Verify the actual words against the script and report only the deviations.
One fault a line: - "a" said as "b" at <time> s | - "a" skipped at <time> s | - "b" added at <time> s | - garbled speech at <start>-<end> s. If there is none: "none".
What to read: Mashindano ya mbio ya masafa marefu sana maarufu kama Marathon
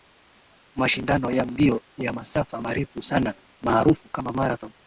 none